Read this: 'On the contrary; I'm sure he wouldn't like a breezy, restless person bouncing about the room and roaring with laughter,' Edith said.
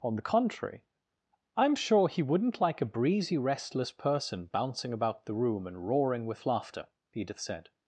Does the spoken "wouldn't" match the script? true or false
true